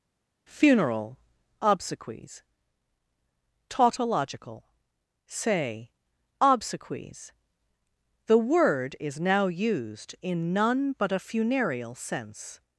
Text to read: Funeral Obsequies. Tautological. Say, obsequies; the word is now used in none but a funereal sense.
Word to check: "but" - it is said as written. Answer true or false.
true